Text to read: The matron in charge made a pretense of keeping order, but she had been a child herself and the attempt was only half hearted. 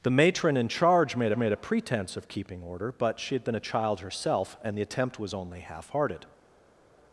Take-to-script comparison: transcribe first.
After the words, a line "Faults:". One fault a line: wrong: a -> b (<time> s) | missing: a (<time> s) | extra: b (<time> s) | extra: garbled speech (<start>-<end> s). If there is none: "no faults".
The matron in charge made made a pretense of keeping order, but she had been a child herself and the attempt was only half hearted.
Faults:
extra: made (1.4 s)